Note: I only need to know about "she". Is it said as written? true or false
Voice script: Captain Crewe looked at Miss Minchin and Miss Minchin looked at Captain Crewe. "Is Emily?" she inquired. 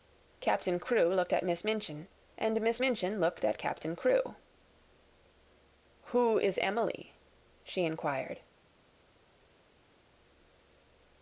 true